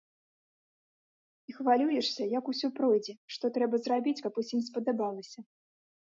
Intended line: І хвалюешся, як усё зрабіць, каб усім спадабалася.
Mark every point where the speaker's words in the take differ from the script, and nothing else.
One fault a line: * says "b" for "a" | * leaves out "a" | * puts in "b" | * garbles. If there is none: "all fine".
* puts in "пройдзе што трэба"